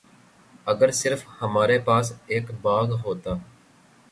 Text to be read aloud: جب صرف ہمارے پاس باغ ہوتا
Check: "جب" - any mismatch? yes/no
yes